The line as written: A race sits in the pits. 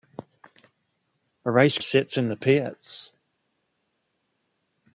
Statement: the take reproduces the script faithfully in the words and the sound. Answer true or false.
true